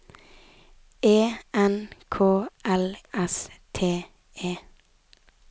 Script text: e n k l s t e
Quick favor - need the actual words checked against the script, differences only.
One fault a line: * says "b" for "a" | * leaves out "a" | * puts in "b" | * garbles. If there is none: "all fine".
all fine